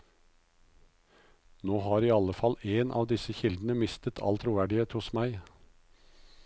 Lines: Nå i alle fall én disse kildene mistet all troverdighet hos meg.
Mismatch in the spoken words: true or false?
true